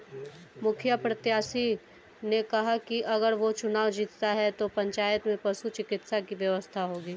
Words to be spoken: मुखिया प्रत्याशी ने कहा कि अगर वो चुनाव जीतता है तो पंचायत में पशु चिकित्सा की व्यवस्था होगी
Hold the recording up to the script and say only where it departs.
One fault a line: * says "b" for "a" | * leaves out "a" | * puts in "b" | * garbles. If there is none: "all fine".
all fine